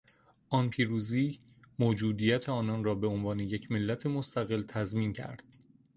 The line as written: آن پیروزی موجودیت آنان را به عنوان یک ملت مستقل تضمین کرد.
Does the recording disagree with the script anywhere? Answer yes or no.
no